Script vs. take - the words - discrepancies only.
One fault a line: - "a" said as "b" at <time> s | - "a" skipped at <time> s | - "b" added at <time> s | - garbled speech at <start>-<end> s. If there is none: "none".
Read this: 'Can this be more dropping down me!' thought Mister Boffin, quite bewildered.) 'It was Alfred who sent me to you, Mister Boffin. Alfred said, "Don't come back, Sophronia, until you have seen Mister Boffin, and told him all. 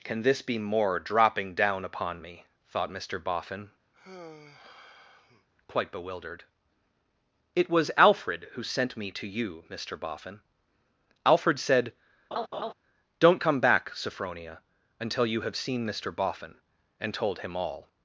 - "upon" added at 1.9 s